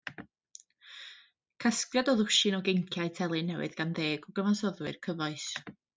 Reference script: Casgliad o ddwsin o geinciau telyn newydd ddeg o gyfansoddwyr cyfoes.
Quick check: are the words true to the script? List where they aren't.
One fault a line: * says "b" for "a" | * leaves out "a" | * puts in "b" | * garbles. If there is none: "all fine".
* puts in "gan"